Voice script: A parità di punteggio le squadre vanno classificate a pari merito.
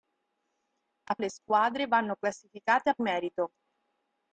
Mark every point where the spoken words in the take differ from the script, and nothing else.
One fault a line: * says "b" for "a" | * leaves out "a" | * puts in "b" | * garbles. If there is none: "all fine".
* leaves out "parità di punteggio"
* leaves out "pari"